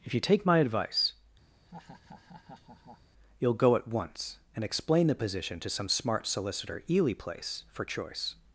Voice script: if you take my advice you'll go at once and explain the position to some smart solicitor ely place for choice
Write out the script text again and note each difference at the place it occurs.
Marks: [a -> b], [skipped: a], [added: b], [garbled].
if you take my advice you'll go at once and explain the position to some smart solicitor ely place for choice